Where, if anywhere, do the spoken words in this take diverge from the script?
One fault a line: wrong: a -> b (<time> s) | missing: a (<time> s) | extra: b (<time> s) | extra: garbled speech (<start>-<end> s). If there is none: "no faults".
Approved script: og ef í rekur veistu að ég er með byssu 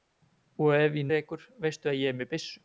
no faults